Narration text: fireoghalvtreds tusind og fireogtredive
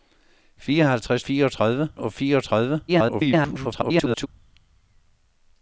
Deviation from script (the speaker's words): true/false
true